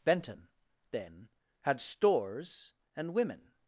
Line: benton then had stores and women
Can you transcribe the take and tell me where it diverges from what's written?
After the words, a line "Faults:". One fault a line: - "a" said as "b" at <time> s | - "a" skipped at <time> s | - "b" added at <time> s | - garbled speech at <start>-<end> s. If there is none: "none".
benton then had stores and women
Faults:
none